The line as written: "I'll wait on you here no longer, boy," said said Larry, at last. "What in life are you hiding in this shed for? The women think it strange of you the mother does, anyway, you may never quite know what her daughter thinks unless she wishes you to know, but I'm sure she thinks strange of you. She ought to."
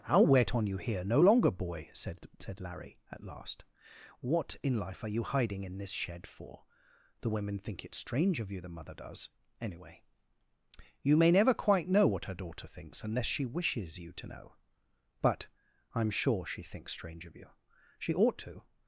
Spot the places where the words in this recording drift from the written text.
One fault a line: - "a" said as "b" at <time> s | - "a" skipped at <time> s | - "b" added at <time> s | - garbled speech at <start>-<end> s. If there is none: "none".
none